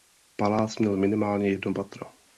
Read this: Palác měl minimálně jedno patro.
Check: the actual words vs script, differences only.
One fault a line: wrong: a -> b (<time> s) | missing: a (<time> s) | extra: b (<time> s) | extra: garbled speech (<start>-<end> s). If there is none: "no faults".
no faults